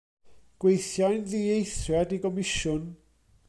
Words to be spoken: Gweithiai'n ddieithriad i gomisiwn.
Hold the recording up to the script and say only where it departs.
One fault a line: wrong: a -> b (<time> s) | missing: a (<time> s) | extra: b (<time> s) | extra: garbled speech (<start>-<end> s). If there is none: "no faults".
no faults